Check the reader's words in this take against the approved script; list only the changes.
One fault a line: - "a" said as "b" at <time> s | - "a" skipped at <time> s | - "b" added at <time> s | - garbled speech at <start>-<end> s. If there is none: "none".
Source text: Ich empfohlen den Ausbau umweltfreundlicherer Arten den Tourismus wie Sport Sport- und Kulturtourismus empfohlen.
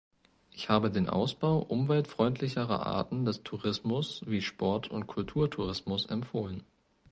- "empfohlen" said as "habe" at 0.7 s
- "den" said as "des" at 3.2 s
- "Sport" skipped at 4.9 s